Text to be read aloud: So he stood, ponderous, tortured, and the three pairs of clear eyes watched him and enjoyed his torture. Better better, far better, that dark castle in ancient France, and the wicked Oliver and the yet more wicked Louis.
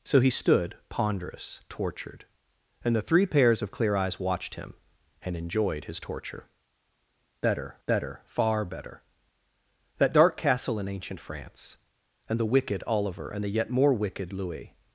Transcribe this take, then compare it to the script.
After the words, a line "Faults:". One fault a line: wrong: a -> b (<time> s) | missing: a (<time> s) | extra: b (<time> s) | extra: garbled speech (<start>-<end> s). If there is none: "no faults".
So he stood, ponderous, tortured, and the three pairs of clear eyes watched him and enjoyed his torture. Better better, far better, that dark castle in ancient France, and the wicked Oliver and the yet more wicked Louis.
Faults:
no faults